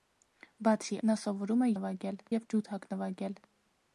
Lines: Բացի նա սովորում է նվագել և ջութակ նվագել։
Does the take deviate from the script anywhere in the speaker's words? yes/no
no